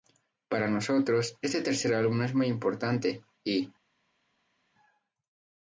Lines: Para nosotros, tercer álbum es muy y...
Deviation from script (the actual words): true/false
true